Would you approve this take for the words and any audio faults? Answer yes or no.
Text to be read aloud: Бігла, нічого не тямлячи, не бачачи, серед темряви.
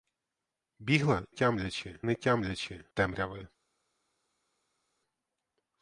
no